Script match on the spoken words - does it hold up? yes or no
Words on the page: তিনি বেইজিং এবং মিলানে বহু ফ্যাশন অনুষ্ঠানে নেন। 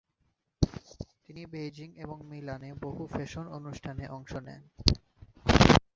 no